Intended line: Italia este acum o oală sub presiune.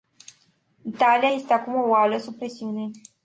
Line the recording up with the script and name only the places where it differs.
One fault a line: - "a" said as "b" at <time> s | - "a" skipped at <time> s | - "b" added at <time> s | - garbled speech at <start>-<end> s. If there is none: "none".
none